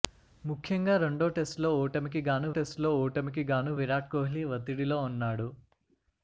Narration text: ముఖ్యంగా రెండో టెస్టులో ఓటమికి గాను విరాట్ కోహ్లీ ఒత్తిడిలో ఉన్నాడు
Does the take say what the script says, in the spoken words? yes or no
no